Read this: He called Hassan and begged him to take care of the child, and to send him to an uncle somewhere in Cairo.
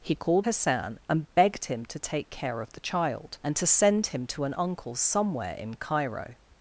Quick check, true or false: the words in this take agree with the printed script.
true